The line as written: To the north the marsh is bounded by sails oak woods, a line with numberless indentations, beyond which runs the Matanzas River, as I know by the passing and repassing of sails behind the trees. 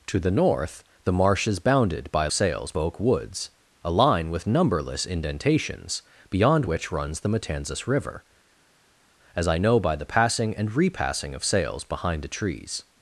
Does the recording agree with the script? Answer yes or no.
yes